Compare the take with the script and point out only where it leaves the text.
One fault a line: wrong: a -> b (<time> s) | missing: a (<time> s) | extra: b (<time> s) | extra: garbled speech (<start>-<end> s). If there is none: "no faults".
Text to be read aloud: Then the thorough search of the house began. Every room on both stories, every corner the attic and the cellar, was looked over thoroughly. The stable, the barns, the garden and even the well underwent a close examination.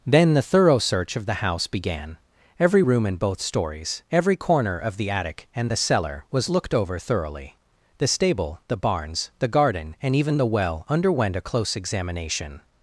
wrong: on -> in (3.0 s)
extra: of (4.8 s)